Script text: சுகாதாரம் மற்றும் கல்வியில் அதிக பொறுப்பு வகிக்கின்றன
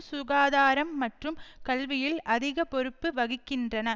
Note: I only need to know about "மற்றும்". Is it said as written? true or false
true